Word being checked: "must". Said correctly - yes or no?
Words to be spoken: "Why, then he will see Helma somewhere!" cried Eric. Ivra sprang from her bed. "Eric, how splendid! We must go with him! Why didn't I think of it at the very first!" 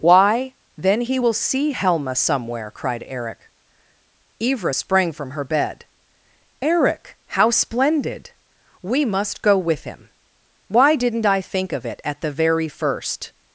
yes